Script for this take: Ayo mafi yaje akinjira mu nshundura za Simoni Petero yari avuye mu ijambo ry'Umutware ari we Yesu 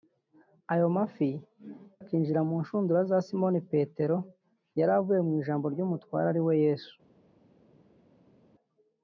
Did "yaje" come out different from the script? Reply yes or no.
yes